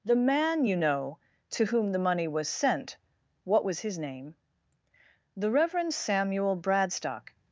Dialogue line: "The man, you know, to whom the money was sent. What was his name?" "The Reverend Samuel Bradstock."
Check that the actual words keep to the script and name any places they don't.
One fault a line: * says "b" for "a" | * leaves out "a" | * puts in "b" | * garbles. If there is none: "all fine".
all fine